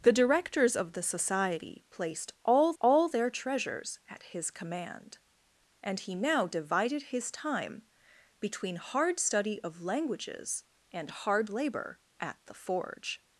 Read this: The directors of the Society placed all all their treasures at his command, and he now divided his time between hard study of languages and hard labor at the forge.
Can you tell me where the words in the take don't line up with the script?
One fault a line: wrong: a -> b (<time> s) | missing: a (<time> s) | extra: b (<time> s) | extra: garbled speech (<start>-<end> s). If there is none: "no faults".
no faults